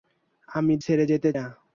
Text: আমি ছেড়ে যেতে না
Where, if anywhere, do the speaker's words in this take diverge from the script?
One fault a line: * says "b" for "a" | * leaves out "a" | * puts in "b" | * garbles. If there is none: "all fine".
all fine